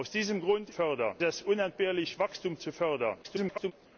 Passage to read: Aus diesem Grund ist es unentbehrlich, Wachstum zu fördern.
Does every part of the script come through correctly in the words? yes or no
no